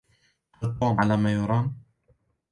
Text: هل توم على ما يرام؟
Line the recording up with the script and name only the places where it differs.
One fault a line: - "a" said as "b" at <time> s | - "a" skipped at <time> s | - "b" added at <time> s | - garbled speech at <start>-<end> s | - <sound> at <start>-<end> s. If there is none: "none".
none